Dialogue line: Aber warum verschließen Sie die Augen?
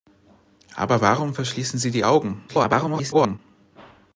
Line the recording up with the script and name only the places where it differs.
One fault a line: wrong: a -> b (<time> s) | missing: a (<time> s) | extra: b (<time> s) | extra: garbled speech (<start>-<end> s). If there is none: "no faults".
extra: garbled speech (2.5-3.4 s)